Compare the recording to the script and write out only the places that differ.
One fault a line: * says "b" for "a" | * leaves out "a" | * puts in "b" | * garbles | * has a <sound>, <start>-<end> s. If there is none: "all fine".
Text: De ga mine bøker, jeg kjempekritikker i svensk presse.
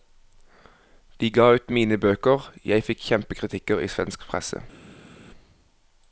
* puts in "ut"
* puts in "fikk"